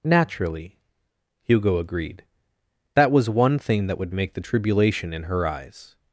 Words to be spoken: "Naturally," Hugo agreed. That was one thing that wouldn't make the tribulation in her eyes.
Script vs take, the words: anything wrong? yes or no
yes